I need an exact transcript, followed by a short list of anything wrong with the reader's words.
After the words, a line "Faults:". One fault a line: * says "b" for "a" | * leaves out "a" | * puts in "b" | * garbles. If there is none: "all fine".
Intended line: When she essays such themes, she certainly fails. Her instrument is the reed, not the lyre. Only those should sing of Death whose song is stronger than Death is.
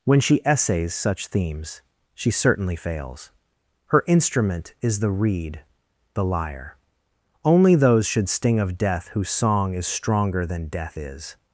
When she essays such themes, she certainly fails. Her instrument is the reed, the lyre. Only those should sting of Death whose song is stronger than Death is.
Faults:
* leaves out "not"
* says "sting" for "sing"